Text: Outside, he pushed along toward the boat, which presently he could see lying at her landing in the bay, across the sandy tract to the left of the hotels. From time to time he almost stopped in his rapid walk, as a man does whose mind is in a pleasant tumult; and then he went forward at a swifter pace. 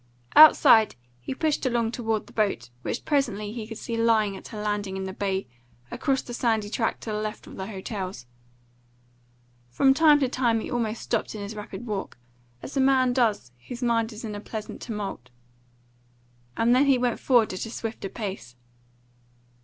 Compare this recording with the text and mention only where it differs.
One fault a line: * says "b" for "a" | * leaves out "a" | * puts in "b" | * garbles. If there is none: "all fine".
all fine